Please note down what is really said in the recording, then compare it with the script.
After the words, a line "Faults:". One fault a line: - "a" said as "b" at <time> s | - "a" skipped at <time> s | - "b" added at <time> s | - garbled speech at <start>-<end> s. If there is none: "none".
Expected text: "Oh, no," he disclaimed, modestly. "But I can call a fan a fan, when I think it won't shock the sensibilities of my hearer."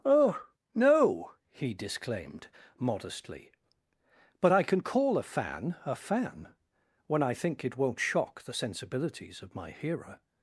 "Oh, no," he disclaimed, modestly. "But I can call a fan a fan, when I think it won't shock the sensibilities of my hearer."
Faults:
none